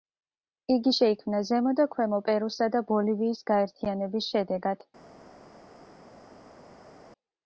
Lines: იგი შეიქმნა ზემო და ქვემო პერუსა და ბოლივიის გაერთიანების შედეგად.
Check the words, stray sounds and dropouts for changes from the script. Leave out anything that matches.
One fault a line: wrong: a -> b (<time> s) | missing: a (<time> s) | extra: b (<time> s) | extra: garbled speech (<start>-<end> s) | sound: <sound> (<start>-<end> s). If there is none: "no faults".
no faults